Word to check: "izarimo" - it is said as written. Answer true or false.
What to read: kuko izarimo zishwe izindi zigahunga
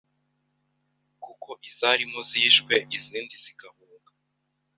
true